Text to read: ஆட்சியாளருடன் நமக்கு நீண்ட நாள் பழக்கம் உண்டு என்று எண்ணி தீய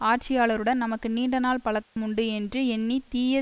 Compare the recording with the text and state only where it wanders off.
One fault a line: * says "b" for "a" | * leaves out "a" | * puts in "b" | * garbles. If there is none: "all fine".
all fine